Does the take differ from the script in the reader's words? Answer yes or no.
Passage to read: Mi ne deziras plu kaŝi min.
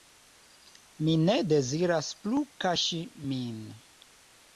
no